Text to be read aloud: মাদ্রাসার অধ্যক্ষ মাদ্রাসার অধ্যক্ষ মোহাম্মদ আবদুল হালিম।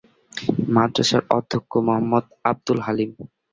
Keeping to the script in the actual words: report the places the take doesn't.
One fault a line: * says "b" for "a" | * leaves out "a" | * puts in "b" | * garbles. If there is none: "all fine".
* leaves out "মাদ্রাসার অধ্যক্ষ"